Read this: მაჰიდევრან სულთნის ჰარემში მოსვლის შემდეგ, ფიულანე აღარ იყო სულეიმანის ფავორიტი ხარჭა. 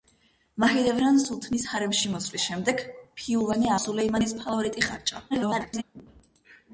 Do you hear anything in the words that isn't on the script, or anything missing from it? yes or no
yes